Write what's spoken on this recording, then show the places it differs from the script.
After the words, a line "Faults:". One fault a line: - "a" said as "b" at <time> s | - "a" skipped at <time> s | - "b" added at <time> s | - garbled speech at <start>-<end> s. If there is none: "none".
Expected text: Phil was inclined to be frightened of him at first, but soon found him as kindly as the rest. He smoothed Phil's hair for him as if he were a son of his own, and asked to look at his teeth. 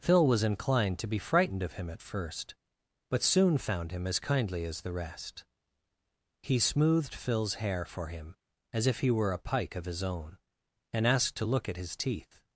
Phil was inclined to be frightened of him at first, but soon found him as kindly as the rest. He smoothed Phil's hair for him as if he were a pike of his own, and asked to look at his teeth.
Faults:
- "son" said as "pike" at 9.4 s